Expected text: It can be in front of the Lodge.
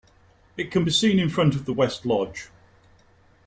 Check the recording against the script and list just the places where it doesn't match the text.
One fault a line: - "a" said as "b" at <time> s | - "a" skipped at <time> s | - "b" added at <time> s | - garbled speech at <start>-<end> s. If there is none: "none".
- "seen" added at 0.9 s
- "West" added at 1.7 s